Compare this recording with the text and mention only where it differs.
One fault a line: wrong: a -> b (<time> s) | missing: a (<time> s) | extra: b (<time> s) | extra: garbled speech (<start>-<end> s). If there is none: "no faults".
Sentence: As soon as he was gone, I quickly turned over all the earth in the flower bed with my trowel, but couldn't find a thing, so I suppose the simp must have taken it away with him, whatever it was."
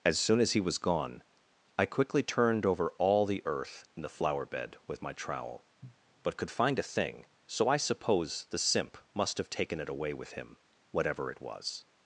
wrong: couldn't -> could (6.4 s)